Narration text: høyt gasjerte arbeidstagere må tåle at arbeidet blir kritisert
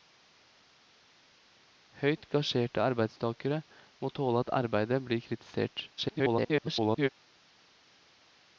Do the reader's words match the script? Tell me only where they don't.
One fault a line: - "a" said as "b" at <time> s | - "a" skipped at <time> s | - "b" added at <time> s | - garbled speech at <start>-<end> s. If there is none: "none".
- garbled speech at 6.0-7.1 s